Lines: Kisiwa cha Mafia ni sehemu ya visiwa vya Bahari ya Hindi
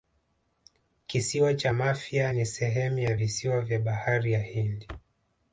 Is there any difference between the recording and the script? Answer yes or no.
no